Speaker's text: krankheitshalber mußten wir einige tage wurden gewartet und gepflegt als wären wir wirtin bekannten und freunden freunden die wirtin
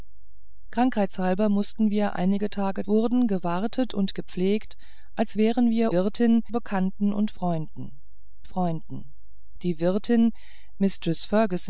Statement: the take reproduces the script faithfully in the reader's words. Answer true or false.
true